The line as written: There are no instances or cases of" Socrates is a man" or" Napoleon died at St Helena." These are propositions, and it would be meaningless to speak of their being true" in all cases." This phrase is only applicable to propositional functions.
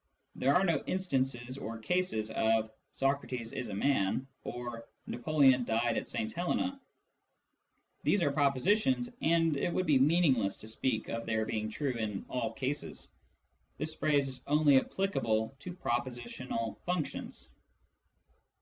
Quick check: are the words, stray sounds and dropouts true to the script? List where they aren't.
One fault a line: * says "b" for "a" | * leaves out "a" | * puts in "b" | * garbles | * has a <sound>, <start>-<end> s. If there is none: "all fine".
all fine